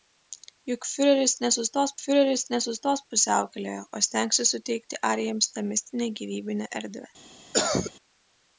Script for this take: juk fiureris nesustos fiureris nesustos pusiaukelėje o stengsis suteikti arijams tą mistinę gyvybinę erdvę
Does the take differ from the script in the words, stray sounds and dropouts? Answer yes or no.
yes